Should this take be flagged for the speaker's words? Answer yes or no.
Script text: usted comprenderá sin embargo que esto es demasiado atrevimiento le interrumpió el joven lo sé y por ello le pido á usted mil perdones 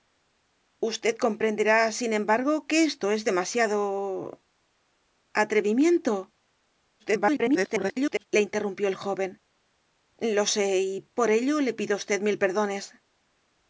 yes